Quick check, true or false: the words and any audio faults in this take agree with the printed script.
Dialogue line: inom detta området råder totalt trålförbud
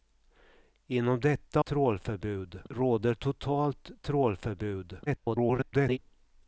false